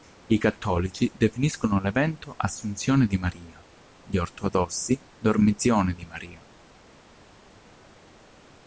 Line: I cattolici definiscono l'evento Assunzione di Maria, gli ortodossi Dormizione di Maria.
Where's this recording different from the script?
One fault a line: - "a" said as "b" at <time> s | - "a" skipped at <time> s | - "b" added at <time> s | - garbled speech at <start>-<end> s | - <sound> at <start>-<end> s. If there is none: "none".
none